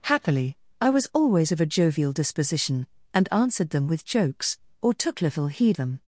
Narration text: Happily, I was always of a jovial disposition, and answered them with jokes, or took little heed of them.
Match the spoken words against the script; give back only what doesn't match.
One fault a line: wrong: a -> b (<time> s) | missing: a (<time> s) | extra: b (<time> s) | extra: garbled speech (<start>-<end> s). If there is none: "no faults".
missing: of (5.8 s)